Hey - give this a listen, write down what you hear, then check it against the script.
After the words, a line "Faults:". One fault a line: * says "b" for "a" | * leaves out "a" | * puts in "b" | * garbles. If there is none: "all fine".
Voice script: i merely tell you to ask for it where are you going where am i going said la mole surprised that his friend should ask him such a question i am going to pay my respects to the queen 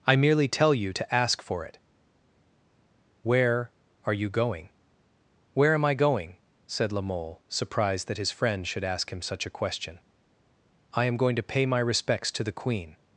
i merely tell you to ask for it where are you going where am i going said la mole surprised that his friend should ask him such a question i am going to pay my respects to the queen
Faults:
all fine